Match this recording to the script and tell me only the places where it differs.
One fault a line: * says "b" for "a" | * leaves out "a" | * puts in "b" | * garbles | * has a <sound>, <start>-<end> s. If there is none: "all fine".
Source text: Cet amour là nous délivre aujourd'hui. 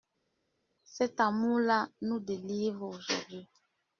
all fine